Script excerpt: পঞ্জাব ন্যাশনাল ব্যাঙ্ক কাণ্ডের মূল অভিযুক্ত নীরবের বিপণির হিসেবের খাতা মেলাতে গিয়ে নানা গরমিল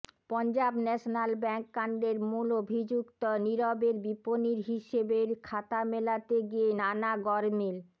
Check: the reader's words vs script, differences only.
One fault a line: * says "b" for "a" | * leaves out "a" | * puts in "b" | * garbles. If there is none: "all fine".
all fine